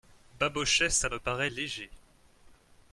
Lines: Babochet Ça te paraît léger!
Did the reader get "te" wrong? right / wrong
wrong